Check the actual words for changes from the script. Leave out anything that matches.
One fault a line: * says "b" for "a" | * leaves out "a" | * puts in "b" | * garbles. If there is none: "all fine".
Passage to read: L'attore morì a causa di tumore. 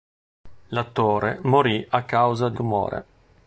all fine